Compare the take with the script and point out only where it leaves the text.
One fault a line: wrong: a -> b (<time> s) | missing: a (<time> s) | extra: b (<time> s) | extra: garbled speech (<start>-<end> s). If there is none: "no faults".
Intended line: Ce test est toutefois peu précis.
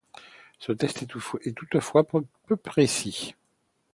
no faults